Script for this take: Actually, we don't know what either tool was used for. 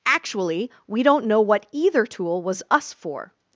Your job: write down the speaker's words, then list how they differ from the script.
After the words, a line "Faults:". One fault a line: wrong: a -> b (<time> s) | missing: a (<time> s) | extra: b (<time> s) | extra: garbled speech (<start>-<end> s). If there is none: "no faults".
Actually, we don't know what either tool was us for.
Faults:
wrong: used -> us (2.7 s)